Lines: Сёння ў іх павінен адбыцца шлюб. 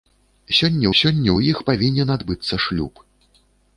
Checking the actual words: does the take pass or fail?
fail